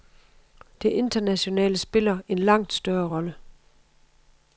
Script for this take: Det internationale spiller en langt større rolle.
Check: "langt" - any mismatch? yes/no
no